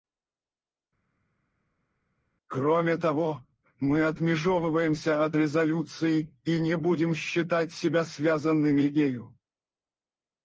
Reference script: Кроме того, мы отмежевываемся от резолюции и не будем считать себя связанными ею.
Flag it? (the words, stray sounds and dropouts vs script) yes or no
no